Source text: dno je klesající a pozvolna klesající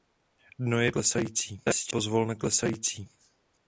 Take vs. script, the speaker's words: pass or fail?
pass